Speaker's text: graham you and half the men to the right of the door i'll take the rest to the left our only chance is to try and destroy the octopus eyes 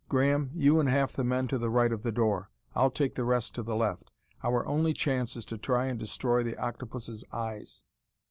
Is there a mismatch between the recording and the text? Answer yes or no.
no